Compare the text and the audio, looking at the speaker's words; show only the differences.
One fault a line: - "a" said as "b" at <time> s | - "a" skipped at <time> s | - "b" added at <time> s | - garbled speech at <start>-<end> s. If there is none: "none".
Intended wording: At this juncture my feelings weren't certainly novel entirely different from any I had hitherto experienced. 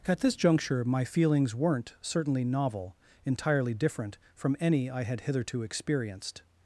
none